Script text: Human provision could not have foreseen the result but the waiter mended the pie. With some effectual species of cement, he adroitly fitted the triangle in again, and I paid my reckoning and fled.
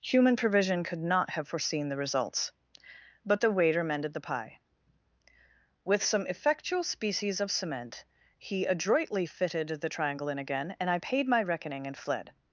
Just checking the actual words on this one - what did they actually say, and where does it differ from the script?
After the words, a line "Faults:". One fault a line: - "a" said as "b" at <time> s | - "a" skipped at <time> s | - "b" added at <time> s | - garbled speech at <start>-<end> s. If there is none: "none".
Human provision could not have foreseen the results but the waiter mended the pie. With some effectual species of cement, he adroitly fitted the triangle in again, and I paid my reckoning and fled.
Faults:
- "result" said as "results" at 2.0 s